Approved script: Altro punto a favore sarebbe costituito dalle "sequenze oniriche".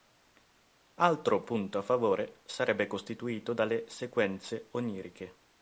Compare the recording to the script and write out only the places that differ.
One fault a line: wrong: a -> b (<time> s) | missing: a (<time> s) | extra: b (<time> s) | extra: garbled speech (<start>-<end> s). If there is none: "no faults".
no faults